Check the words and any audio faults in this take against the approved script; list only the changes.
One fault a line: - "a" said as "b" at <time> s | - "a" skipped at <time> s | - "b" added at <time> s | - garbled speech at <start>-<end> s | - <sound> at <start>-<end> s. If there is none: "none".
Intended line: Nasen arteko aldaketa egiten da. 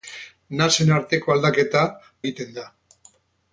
none